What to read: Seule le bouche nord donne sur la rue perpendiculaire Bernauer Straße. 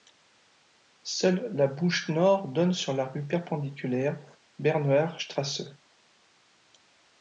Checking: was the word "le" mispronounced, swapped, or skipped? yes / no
yes